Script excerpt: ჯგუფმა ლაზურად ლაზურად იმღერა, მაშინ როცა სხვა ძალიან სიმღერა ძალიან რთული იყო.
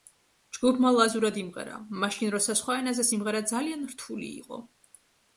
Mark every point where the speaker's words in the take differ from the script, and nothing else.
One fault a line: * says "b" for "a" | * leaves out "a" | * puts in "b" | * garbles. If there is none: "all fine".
* leaves out "ლაზურად"
* says "ენაზე" for "ძალიან"